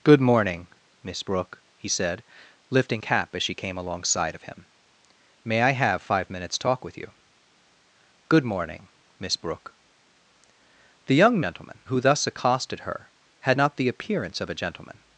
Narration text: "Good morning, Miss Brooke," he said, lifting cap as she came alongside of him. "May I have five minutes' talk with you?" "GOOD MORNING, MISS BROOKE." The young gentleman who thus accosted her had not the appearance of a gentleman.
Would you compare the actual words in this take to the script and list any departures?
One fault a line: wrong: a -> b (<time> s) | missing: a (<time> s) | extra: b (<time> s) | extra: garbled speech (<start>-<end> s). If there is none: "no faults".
no faults